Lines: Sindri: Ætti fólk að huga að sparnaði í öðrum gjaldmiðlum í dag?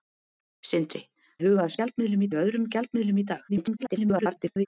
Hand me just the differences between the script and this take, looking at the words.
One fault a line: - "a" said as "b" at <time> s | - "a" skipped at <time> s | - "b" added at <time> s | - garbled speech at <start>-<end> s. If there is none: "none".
- "Ætti fólk" skipped at 1.0 s
- "sparnaði" said as "gjaldmiðlum" at 1.8 s
- garbled speech at 3.5-4.7 s